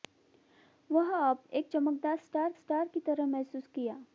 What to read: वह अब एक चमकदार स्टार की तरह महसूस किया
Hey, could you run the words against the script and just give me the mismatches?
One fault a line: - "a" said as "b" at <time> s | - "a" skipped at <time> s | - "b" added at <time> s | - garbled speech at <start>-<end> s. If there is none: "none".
- "स्टार" added at 2.5 s